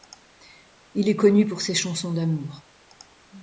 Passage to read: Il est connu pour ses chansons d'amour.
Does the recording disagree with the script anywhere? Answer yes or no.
no